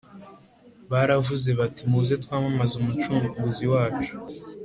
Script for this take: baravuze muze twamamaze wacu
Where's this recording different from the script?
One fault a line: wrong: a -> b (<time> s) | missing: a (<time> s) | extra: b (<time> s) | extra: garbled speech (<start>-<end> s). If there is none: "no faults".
extra: bati (1.6 s)
extra: umucunguzi (2.8 s)